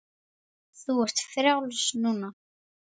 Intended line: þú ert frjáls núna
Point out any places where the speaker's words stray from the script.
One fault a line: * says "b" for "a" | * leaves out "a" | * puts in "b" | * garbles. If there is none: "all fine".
all fine